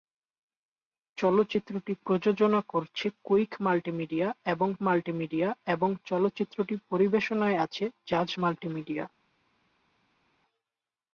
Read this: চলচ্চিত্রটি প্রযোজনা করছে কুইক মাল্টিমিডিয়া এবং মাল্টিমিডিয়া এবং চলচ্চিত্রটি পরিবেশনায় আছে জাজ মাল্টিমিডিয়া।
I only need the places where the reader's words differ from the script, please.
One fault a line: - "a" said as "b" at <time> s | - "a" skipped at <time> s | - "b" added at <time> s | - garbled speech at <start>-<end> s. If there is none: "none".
none